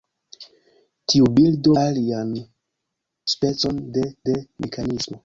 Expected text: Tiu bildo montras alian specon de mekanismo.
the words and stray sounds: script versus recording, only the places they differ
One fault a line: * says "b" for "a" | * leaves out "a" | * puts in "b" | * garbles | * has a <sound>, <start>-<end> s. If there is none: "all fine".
* leaves out "montras"
* puts in "de"